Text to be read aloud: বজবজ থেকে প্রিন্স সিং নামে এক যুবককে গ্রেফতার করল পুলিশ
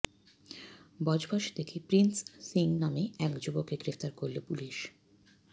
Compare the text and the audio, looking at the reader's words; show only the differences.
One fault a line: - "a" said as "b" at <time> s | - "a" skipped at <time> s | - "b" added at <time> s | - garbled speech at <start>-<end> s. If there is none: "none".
none